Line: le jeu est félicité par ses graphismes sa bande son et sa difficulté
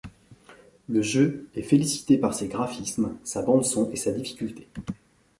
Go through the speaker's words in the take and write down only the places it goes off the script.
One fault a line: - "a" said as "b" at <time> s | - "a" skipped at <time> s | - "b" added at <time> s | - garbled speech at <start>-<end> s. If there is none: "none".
none